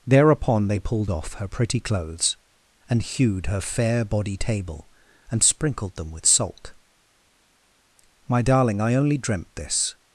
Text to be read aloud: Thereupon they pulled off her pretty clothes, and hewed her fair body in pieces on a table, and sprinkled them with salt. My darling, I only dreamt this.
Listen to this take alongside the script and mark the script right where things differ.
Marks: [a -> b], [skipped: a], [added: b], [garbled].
Thereupon they pulled off her pretty clothes, and hewed her fair body [skipped: in pieces on a] table, and sprinkled them with salt. My darling, I only dreamt this.